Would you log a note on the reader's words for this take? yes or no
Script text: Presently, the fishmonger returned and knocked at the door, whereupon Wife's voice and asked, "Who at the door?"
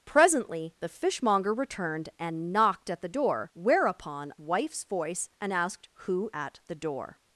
no